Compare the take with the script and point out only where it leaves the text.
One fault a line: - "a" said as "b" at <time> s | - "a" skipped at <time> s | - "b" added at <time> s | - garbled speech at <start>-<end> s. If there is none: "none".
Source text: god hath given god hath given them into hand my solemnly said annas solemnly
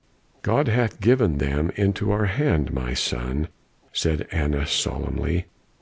- "god hath given" skipped at 1.4 s
- "our" added at 2.1 s
- "solemnly" said as "son" at 2.9 s